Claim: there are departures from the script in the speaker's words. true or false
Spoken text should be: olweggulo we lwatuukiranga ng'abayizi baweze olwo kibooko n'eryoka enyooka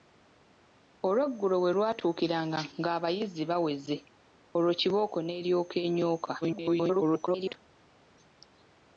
true